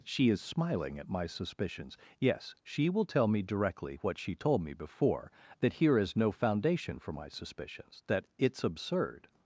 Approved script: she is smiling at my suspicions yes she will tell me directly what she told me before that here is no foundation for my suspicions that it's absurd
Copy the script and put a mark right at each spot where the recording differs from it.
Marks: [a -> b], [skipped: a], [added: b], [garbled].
she is smiling at my suspicions yes she will tell me directly what she told me before that here is no foundation for my suspicions that it's absurd